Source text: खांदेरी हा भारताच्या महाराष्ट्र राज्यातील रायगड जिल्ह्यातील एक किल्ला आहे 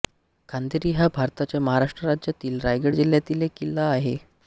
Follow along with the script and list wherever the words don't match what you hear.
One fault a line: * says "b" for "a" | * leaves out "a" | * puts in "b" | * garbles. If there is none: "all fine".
all fine